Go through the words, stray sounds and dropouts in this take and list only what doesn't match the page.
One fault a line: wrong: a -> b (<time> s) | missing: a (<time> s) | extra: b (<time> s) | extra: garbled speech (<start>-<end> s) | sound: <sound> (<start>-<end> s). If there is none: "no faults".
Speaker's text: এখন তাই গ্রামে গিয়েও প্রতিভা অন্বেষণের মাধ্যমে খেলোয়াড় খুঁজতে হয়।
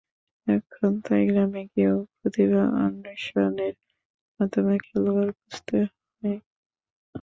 no faults